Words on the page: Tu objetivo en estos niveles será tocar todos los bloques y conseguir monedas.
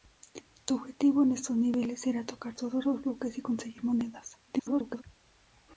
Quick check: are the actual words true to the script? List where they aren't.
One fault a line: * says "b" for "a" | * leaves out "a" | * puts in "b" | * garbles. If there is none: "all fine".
* garbles